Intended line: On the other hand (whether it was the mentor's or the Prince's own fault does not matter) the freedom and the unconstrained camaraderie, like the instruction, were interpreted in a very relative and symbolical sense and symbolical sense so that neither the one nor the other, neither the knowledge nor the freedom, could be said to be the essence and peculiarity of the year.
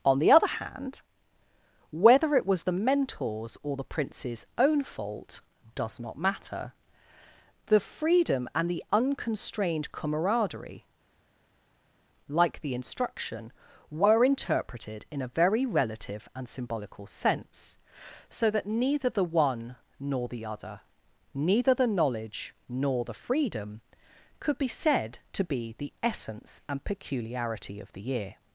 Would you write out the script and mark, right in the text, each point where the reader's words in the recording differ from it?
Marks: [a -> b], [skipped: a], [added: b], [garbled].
On the other hand (whether it was the mentor's or the Prince's own fault does not matter) the freedom and the unconstrained camaraderie, like the instruction, were interpreted in a very relative and symbolical sense [skipped: and symbolical sense] so that neither the one nor the other, neither the knowledge nor the freedom, could be said to be the essence and peculiarity of the year.